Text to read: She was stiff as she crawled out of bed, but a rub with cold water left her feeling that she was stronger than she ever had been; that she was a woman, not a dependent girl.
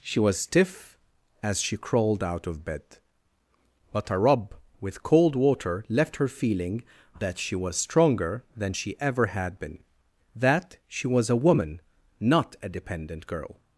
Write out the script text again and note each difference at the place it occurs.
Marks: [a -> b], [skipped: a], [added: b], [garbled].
She was stiff as she crawled out of bed, but a rub with cold water left her feeling that she was stronger than she ever had been; that she was a woman, not a dependent girl.